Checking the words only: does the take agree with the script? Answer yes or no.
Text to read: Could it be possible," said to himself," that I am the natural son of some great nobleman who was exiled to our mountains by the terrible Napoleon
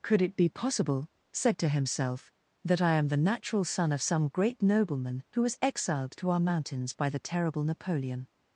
yes